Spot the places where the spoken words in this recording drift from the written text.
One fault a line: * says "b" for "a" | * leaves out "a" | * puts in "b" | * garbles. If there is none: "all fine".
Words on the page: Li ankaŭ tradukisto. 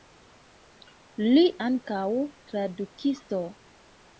all fine